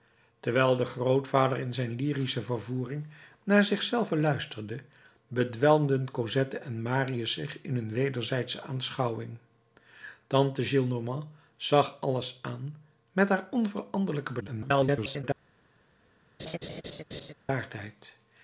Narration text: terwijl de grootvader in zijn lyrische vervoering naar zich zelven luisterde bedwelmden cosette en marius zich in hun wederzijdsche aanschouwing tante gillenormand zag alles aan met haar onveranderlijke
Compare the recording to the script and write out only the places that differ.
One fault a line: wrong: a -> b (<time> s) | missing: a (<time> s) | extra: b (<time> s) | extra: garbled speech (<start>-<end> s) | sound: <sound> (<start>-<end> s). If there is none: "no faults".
extra: garbled speech (14.4-15.2 s)
sound: laugh (16.4-17.3 s)